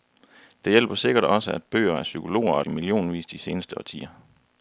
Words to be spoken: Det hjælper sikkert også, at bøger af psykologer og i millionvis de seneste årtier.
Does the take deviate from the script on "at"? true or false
false